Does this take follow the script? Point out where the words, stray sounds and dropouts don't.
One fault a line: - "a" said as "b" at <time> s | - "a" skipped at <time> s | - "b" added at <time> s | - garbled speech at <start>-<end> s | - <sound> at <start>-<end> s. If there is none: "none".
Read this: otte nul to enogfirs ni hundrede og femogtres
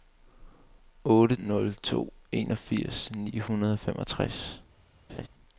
- laugh at 5.1-5.3 s